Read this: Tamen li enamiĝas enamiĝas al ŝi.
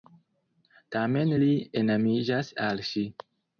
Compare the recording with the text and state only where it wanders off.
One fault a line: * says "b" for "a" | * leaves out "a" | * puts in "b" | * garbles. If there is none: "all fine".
* leaves out "enamiĝas"